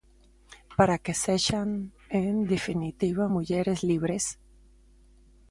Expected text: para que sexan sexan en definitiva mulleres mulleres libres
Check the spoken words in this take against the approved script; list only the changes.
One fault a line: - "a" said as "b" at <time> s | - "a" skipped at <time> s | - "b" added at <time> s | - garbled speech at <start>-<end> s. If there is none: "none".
- "sexan" skipped at 1.7 s
- "mulleres" skipped at 3.8 s